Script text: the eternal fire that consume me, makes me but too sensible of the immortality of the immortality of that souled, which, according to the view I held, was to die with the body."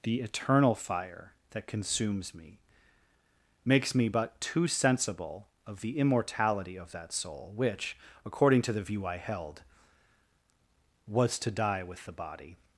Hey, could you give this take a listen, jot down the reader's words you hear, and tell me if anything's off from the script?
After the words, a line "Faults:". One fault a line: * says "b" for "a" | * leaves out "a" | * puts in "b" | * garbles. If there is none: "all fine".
the eternal fire that consumes me, makes me but too sensible of the immortality of that soul, which, according to the view I held, was to die with the body."
Faults:
* says "consumes" for "consume"
* leaves out "the immortality of"
* says "soul" for "souled"